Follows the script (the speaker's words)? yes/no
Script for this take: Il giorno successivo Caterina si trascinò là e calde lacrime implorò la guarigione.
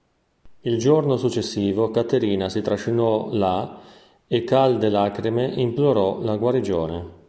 yes